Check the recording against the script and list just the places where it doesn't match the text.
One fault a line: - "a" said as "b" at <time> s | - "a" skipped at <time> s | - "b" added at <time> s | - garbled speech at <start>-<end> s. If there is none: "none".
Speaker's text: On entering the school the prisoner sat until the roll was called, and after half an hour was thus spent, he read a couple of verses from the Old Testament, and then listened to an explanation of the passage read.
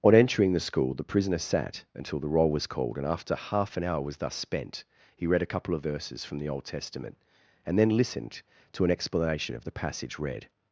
none